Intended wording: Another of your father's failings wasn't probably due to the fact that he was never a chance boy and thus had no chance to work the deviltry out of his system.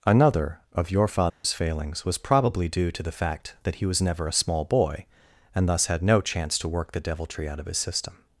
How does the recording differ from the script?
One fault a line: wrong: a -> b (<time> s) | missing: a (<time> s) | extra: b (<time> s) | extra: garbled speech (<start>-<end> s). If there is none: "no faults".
wrong: wasn't -> was (2.0 s)
wrong: chance -> small (4.3 s)